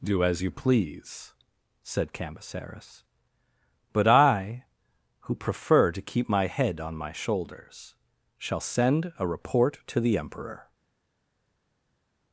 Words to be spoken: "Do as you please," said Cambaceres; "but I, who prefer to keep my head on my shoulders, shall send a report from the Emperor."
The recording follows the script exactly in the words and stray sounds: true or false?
false